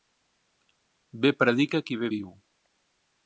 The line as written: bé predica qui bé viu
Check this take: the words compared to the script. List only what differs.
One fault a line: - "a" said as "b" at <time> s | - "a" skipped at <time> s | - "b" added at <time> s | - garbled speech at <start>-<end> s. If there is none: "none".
none